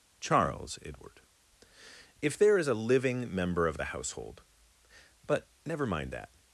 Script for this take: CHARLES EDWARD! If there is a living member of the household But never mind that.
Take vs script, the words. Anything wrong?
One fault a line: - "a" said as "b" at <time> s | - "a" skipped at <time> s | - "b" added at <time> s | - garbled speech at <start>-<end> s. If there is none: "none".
none